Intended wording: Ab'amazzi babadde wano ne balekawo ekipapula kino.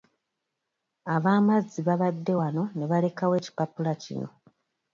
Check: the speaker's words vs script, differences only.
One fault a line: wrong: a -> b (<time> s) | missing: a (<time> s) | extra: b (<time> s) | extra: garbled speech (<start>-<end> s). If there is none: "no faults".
no faults